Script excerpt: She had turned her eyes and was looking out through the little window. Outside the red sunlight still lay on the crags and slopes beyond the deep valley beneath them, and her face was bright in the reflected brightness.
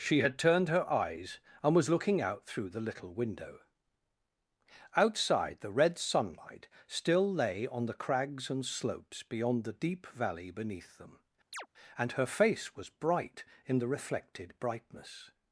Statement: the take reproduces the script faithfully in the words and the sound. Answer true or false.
false